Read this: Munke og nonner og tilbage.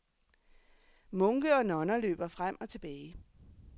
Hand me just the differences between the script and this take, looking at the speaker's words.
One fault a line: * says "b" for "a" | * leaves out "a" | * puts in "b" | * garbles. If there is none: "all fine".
* puts in "løber frem"